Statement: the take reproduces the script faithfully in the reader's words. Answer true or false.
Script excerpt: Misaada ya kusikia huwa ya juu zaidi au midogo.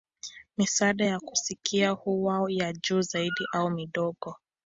true